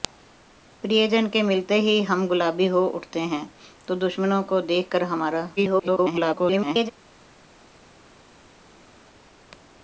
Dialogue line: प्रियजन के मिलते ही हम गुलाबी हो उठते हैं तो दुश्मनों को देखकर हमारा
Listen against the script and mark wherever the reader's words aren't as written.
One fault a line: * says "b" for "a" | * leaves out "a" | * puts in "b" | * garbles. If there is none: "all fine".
* garbles